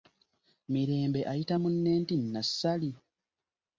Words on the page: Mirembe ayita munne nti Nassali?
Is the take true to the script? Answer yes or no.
yes